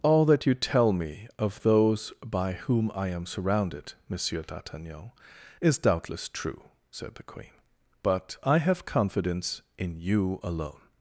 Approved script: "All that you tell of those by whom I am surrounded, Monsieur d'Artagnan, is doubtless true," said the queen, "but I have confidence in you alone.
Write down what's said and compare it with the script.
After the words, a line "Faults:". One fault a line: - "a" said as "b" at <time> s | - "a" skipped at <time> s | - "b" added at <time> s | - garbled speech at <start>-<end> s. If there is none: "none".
"All that you tell me of those by whom I am surrounded, Monsieur d'Artagnan, is doubtless true," said the queen, "but I have confidence in you alone.
Faults:
- "me" added at 0.9 s